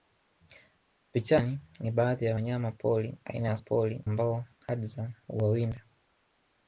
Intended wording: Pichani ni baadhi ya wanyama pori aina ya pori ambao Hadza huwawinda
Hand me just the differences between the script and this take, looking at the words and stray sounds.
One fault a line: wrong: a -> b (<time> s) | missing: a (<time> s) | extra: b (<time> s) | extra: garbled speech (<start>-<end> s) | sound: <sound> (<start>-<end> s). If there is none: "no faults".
no faults